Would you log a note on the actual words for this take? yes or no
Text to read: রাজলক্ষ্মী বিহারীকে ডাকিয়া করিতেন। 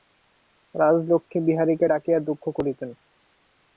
yes